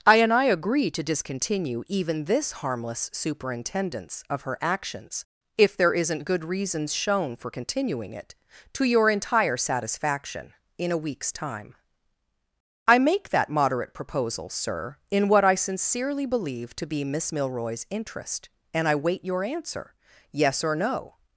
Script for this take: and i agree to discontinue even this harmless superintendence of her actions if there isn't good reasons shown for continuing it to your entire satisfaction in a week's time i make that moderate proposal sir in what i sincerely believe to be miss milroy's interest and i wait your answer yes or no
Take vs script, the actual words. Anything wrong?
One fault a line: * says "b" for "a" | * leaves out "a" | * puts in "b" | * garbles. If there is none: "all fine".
* puts in "i"